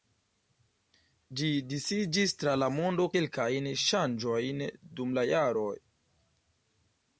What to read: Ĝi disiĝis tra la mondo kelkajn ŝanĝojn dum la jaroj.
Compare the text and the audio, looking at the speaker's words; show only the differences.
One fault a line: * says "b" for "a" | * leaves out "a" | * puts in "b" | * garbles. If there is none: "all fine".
all fine